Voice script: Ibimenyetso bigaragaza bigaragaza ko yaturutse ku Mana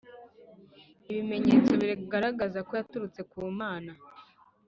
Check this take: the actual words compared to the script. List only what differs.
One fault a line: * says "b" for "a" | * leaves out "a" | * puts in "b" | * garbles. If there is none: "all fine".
* leaves out "bigaragaza"